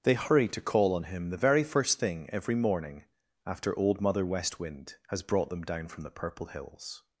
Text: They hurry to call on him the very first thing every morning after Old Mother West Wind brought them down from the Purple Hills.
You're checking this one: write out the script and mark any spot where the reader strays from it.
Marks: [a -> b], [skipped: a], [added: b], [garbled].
They hurry to call on him the very first thing every morning after Old Mother West Wind [added: has] brought them down from the Purple Hills.